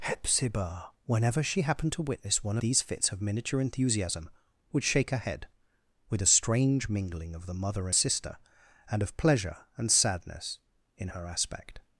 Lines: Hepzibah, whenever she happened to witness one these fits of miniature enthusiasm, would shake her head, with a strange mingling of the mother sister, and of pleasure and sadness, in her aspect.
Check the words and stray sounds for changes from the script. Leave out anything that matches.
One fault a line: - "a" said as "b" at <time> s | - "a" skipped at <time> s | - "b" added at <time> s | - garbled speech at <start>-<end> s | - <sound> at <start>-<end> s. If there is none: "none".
none